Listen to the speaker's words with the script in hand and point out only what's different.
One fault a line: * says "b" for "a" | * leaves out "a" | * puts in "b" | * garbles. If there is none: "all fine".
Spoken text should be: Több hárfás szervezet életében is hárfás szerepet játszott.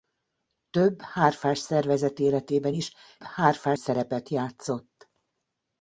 all fine